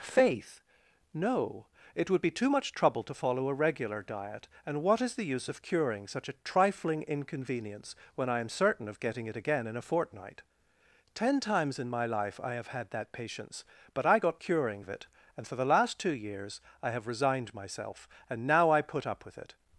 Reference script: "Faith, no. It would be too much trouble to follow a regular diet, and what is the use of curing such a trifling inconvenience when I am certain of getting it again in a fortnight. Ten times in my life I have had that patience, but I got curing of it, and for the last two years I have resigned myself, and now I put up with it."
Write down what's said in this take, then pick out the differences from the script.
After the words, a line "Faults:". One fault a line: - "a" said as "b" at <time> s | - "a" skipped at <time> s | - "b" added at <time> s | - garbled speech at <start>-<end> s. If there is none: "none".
"Faith, no. It would be too much trouble to follow a regular diet, and what is the use of curing such a trifling inconvenience when I am certain of getting it again in a fortnight. Ten times in my life I have had that patience, but I got curing of it, and for the last two years I have resigned myself, and now I put up with it."
Faults:
none